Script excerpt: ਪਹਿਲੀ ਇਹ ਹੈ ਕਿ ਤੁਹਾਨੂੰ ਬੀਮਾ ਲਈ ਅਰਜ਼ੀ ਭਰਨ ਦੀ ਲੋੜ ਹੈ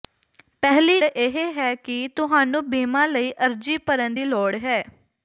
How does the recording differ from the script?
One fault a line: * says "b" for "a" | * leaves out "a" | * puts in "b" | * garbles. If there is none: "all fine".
all fine